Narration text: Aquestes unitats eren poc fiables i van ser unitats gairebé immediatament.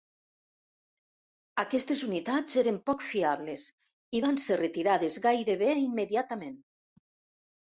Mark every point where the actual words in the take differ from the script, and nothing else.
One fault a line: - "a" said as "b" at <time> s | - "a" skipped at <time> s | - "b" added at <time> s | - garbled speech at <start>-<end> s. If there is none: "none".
- "unitats" said as "retirades" at 4.6 s